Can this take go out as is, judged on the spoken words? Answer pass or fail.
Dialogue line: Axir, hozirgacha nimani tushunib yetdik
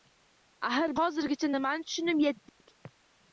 pass